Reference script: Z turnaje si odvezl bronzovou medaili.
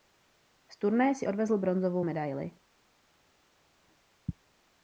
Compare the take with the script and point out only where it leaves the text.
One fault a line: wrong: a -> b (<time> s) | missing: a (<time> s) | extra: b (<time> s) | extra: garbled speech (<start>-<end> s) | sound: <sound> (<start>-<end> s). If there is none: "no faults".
no faults